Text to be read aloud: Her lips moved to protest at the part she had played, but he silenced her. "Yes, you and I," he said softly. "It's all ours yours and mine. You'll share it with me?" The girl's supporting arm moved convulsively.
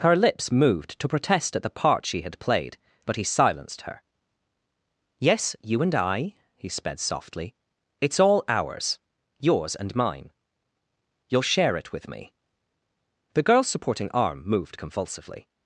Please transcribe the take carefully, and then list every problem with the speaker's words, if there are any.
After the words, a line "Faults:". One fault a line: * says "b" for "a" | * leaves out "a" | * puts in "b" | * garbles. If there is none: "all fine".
Her lips moved to protest at the part she had played, but he silenced her. "Yes, you and I," he sped softly. "It's all ours yours and mine. You'll share it with me?" The girl's supporting arm moved convulsively.
Faults:
* says "sped" for "said"